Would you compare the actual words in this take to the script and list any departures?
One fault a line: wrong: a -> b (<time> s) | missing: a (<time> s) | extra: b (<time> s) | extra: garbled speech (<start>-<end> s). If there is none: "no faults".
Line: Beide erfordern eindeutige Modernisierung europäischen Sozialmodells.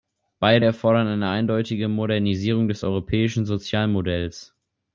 extra: eine (1.1 s)
extra: des (2.7 s)